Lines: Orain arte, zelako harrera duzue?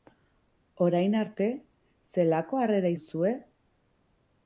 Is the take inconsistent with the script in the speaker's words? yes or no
no